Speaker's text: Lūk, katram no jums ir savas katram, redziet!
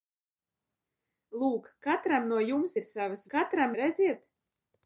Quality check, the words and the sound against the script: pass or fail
pass